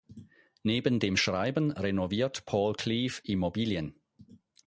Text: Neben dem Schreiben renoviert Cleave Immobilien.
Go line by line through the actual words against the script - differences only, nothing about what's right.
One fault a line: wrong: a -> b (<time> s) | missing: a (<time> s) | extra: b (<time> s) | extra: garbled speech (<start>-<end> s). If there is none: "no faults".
extra: Paul (2.5 s)